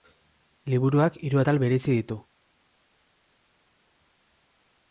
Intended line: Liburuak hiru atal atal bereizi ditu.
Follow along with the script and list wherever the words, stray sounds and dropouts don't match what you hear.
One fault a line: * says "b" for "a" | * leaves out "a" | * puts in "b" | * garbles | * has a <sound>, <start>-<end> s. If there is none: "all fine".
* leaves out "atal"